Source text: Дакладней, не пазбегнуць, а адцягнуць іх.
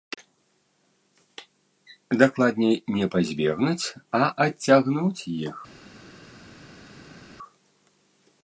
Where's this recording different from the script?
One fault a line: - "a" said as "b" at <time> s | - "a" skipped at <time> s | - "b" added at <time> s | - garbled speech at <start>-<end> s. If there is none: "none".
none